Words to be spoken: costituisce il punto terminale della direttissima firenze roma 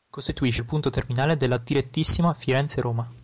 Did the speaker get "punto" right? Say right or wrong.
right